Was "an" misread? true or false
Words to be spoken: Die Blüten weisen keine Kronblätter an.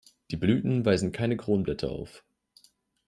true